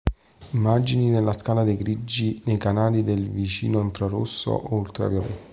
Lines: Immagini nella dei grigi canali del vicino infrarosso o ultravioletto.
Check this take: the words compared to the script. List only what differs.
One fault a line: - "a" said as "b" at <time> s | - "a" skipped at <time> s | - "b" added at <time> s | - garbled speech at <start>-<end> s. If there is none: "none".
- "scala" added at 1.3 s
- "nei" added at 2.4 s